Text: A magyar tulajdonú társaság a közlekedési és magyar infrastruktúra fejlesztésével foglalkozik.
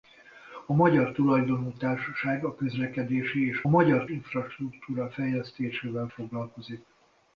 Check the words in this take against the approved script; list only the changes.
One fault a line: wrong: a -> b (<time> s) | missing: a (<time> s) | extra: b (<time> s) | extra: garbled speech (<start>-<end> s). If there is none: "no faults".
no faults